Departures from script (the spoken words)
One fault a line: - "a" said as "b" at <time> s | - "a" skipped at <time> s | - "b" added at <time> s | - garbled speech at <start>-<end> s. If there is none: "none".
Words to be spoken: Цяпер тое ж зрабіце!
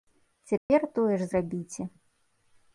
none